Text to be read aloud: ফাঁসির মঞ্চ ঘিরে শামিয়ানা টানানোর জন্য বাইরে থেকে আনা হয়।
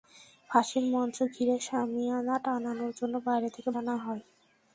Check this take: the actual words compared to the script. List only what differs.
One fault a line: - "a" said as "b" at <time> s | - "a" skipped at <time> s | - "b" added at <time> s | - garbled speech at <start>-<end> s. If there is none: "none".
none